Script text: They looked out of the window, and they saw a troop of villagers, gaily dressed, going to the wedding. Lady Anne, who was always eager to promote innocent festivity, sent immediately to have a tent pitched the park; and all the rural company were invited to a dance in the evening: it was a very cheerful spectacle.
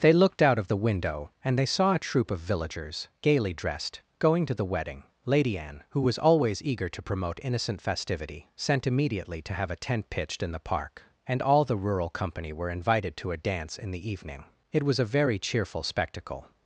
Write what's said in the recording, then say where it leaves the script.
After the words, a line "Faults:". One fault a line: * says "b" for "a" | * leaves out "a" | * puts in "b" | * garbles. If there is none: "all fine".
They looked out of the window, and they saw a troop of villagers, gaily dressed, going to the wedding. Lady Anne, who was always eager to promote innocent festivity, sent immediately to have a tent pitched in the park; and all the rural company were invited to a dance in the evening: it was a very cheerful spectacle.
Faults:
* puts in "in"